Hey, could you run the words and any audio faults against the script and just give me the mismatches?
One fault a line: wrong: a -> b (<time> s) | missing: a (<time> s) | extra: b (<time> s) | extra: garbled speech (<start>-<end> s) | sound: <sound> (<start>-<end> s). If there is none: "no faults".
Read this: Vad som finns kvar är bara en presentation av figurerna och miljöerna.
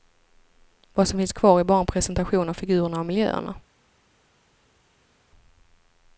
no faults